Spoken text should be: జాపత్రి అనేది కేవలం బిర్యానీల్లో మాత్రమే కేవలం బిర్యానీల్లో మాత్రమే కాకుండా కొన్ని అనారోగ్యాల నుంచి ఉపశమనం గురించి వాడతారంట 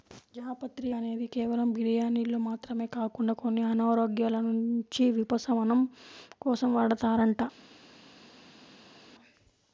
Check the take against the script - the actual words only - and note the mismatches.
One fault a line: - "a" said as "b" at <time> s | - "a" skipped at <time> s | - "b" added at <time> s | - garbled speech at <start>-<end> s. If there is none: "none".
- "కేవలం బిర్యానీల్లో మాత్రమే" skipped at 2.9 s
- "గురించి" said as "కోసం" at 6.4 s